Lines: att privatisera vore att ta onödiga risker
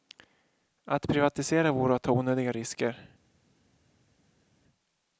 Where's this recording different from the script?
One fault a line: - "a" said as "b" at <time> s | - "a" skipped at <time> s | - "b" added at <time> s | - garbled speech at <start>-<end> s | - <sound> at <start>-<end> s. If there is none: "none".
none